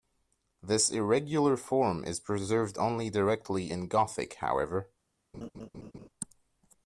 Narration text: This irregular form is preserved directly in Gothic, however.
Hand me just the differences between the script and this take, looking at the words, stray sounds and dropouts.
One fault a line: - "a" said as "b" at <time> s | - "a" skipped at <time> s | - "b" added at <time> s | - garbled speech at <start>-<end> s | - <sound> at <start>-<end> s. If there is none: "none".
- "only" added at 2.8 s
- laugh at 5.3-6.1 s